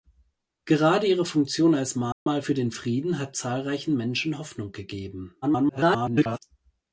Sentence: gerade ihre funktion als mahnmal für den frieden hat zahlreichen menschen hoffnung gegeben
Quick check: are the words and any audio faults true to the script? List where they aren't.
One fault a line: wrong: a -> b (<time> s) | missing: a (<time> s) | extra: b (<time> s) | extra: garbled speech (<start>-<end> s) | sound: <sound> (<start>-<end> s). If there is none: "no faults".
sound: dropout (2.1-2.3 s)
extra: garbled speech (5.4-6.4 s)